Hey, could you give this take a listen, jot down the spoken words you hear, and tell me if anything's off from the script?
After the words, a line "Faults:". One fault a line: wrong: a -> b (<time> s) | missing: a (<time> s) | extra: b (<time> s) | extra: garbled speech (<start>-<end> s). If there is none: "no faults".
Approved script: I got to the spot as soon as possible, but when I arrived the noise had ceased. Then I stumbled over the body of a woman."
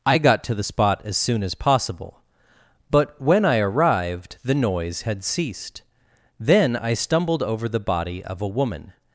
I got to the spot as soon as possible, but when I arrived the noise had ceased. Then I stumbled over the body of a woman."
Faults:
no faults